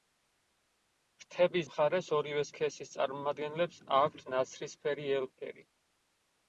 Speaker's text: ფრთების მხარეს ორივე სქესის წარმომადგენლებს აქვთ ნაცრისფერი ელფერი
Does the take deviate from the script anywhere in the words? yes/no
no